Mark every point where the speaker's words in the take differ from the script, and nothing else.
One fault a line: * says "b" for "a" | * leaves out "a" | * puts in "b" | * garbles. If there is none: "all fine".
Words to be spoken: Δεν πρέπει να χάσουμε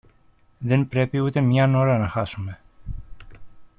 * puts in "ούτε μιαν ώρα"